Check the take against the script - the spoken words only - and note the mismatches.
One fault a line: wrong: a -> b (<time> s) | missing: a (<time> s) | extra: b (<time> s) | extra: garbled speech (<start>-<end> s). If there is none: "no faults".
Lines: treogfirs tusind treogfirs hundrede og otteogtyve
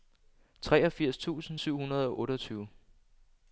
wrong: treogfirs -> syv (1.6 s)